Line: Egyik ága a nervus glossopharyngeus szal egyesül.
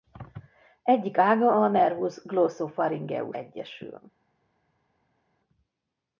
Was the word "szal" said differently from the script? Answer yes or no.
yes